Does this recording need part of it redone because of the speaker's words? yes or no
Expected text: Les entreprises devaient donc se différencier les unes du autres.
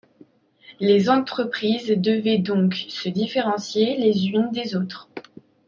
yes